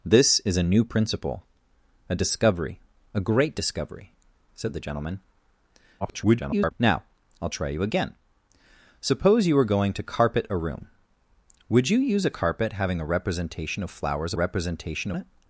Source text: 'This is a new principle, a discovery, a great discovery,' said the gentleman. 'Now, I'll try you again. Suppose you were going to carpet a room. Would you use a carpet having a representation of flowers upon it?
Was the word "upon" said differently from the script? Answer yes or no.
yes